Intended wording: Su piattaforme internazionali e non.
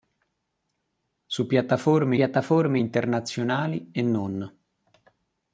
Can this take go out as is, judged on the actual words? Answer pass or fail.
fail